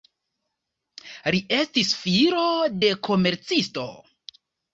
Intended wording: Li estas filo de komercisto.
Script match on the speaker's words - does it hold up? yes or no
no